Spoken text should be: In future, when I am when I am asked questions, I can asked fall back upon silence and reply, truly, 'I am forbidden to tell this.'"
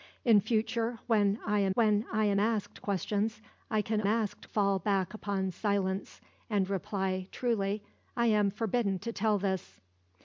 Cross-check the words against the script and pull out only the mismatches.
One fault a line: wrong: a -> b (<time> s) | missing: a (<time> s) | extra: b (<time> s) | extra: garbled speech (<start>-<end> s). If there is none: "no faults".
no faults